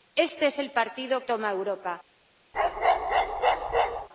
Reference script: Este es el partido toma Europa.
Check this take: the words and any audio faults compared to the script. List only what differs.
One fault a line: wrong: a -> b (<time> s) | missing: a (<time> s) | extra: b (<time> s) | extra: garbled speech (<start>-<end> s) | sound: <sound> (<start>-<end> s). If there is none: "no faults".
sound: bark (2.5-4.1 s)